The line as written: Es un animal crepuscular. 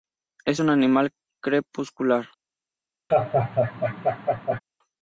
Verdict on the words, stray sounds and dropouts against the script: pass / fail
fail